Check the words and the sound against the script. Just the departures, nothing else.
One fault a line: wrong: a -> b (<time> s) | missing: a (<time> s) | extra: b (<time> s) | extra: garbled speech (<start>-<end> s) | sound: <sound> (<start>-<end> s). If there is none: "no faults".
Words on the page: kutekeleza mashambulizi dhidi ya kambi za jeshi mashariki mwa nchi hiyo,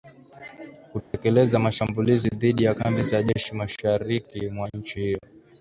sound: dropout (1.0-1.1 s)